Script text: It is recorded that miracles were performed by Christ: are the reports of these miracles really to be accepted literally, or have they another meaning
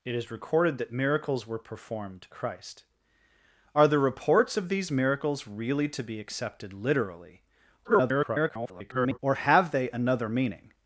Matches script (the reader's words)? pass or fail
fail